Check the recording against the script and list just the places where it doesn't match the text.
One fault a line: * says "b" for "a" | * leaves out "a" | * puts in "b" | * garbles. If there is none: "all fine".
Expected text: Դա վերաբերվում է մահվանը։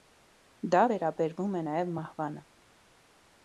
* puts in "նաև"